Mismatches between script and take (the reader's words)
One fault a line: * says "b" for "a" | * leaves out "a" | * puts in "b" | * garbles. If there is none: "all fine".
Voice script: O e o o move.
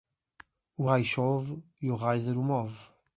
* puts in "raio chove"
* puts in "riser"